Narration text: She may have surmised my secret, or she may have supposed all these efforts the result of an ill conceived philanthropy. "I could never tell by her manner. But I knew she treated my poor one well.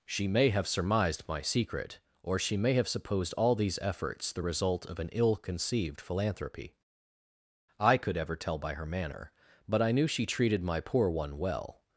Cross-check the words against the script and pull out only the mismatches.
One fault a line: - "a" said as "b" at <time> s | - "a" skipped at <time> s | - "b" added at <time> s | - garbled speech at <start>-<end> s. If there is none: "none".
- "never" said as "ever" at 8.2 s